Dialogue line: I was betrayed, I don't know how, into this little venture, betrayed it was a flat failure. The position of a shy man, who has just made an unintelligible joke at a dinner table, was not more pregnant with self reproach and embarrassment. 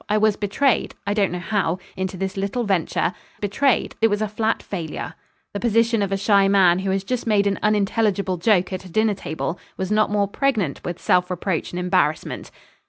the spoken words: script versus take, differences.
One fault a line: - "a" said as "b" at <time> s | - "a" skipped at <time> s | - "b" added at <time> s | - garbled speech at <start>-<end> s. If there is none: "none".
none